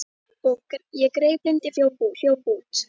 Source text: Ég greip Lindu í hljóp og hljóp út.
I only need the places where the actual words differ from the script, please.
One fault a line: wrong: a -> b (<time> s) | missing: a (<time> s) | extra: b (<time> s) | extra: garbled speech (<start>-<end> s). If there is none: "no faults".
no faults